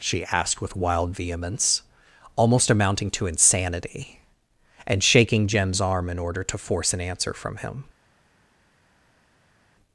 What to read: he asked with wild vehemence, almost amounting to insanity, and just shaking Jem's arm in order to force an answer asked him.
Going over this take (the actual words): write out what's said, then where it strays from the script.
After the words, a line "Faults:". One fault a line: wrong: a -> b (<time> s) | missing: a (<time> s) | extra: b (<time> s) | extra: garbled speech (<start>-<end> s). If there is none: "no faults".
she asked with wild vehemence, almost amounting to insanity, and shaking Jem's arm in order to force an answer from him.
Faults:
wrong: he -> she (0.0 s)
missing: just (5.0 s)
wrong: asked -> from (7.3 s)